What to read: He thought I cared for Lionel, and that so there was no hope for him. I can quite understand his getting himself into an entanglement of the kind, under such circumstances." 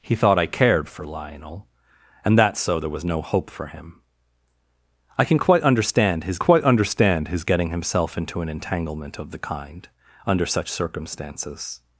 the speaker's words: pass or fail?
fail